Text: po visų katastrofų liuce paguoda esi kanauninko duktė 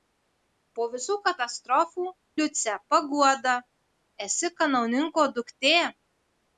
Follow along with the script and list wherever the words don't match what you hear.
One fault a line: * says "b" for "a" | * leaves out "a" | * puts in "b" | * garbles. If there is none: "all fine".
all fine